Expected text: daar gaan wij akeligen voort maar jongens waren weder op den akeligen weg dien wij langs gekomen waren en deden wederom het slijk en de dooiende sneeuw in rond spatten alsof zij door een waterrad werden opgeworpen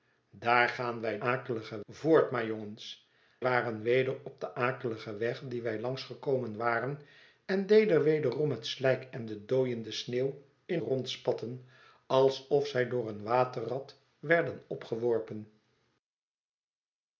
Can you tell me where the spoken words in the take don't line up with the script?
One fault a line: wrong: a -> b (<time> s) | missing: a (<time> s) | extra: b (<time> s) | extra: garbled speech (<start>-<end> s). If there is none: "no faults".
no faults